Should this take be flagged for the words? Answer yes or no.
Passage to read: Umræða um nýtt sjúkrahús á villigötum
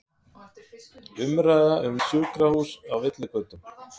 yes